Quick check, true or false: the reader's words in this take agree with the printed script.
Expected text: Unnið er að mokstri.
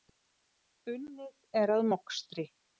true